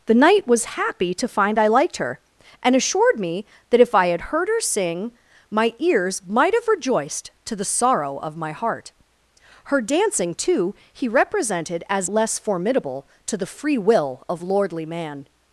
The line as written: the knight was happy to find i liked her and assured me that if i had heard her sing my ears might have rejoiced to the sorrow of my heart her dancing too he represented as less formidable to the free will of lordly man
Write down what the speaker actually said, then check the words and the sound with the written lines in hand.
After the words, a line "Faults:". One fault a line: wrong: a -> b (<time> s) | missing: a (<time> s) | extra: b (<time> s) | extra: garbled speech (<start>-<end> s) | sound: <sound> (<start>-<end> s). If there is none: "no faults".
the knight was happy to find i liked her and assured me that if i had heard her sing my ears might have rejoiced to the sorrow of my heart her dancing too he represented as less formidable to the free will of lordly man
Faults:
no faults